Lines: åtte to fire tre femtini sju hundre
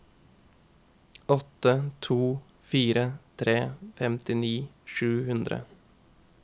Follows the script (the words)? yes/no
yes